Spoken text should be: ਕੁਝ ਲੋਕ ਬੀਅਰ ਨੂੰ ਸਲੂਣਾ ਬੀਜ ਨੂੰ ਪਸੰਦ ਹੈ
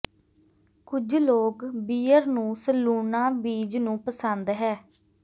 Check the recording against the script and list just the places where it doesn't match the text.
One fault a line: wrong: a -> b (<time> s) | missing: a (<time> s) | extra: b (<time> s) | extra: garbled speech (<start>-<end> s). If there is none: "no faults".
no faults